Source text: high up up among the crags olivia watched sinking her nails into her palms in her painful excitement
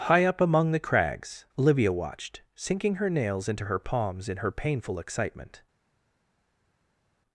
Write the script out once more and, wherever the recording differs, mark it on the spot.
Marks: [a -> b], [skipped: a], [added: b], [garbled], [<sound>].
high up [skipped: up] among the crags olivia watched sinking her nails into her palms in her painful excitement